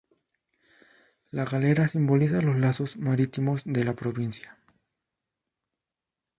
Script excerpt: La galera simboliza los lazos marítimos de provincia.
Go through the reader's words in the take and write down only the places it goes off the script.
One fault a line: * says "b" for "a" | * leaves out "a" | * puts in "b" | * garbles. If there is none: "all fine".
* puts in "la"